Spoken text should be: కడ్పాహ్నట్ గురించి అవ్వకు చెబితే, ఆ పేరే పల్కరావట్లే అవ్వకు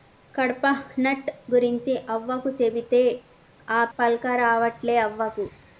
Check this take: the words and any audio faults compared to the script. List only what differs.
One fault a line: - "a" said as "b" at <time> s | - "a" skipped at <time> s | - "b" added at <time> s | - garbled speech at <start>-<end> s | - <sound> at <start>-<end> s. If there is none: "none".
- "పేరే" skipped at 3.9 s